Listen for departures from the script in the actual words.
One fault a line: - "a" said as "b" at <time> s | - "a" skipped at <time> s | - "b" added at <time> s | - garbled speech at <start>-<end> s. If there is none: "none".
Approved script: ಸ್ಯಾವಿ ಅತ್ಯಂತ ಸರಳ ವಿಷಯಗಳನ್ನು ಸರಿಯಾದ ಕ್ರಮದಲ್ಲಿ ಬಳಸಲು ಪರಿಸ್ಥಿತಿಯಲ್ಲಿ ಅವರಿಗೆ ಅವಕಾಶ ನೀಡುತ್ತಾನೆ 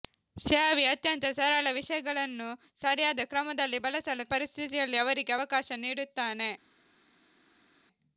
none